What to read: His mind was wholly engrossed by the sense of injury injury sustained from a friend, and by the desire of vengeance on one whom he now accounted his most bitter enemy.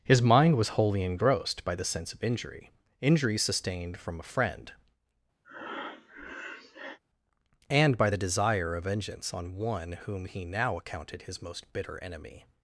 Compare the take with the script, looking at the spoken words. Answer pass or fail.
pass